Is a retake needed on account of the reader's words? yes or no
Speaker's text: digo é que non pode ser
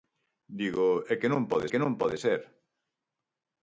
yes